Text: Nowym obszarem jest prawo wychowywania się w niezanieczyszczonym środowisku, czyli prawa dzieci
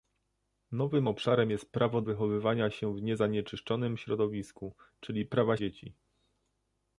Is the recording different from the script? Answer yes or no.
no